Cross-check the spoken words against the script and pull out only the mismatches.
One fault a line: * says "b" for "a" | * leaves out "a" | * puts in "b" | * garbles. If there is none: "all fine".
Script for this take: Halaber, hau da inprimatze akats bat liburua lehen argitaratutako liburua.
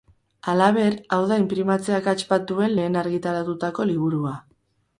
* says "duen" for "liburua"